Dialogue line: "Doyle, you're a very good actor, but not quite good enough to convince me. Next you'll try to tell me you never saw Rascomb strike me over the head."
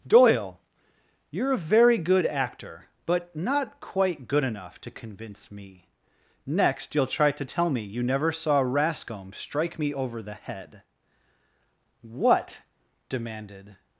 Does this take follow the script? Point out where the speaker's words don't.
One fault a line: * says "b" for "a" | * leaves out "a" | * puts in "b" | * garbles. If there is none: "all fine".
* puts in "What demanded"